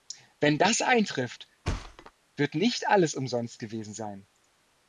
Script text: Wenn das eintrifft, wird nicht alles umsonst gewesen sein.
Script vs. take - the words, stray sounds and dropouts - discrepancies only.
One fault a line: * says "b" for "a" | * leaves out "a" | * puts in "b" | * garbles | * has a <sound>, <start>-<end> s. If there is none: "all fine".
* has a thud, 1.6-2.1 s